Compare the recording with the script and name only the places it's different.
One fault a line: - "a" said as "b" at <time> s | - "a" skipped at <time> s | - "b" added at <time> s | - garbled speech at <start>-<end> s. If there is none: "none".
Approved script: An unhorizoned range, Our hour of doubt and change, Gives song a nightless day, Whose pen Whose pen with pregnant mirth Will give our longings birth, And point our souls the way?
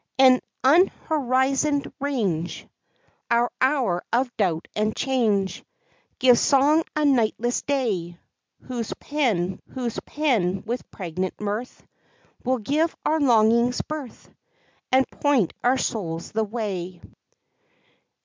none